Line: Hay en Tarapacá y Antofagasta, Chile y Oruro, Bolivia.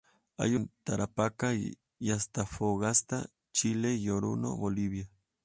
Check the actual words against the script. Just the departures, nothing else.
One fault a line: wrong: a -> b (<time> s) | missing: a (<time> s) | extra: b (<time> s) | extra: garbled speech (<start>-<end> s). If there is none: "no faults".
no faults